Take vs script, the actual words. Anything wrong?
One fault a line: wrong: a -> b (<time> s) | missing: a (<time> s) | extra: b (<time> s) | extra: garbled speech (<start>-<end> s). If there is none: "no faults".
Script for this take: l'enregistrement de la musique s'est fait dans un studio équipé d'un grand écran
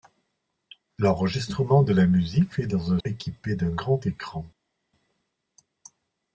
missing: s'est (2.5 s)
missing: studio (3.0 s)